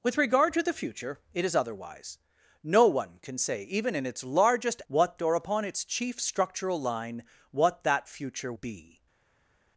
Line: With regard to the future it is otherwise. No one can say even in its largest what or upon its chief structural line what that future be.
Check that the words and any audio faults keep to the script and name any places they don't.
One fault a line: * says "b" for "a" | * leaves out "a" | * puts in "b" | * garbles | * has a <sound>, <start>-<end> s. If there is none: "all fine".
all fine